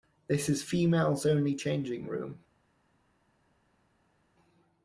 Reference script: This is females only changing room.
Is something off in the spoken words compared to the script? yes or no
no